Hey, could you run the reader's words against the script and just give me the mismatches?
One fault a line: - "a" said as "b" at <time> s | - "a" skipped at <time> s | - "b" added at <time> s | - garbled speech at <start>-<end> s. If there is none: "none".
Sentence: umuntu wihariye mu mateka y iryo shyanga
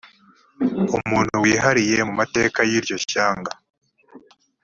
none